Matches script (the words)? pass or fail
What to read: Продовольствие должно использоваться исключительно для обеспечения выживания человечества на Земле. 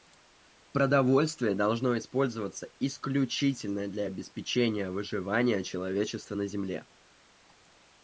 pass